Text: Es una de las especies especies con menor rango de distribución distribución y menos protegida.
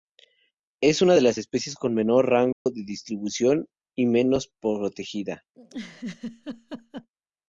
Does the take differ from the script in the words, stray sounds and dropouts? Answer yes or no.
yes